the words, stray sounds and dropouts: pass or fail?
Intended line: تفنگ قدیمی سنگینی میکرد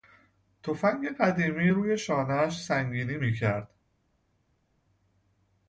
fail